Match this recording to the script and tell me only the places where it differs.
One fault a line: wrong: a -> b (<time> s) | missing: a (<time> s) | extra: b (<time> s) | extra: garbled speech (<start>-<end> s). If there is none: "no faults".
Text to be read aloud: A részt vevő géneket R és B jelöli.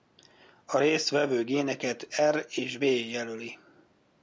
missing: B (2.8 s)